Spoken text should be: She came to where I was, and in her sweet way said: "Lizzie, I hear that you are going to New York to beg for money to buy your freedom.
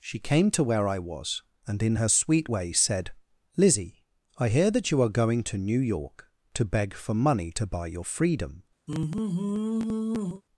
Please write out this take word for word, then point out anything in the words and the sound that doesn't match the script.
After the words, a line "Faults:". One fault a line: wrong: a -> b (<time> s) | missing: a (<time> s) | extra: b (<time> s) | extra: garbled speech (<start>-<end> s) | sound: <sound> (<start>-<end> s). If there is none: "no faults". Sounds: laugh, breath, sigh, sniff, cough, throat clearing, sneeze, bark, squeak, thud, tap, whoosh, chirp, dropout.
She came to where I was, and in her sweet way said: "Lizzie, I hear that you are going to New York to beg for money to buy your freedom.
Faults:
sound: sigh (8.9-10.4 s)